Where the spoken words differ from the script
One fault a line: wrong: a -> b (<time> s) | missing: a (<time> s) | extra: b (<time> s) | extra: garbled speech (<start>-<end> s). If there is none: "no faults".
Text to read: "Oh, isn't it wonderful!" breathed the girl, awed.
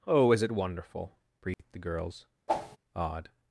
wrong: isn't -> is (0.3 s)
wrong: girl -> girls (1.8 s)